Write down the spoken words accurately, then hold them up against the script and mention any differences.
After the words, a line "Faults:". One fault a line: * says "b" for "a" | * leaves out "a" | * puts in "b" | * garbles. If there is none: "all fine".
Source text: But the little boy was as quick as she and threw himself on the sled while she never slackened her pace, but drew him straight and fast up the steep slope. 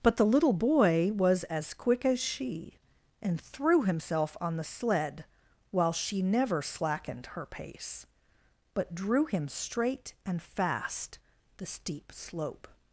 But the little boy was as quick as she and threw himself on the sled while she never slackened her pace, but drew him straight and fast the steep slope.
Faults:
* leaves out "up"